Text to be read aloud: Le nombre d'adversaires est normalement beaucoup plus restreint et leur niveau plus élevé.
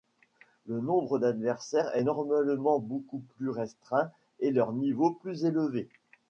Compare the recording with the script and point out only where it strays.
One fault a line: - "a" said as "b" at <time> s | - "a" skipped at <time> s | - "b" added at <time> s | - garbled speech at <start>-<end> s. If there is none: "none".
none